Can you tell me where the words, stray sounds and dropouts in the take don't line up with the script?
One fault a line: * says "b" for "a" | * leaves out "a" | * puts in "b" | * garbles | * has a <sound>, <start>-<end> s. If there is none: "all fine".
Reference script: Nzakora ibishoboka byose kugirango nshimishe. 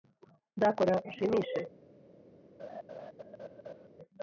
* leaves out "ibishoboka byose kugirango"
* has a laugh, 2.6-3.9 s